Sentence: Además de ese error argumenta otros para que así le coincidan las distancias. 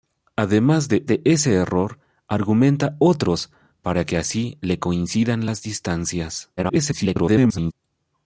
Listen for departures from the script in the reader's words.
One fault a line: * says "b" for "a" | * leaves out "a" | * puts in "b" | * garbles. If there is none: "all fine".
* puts in "de"
* garbles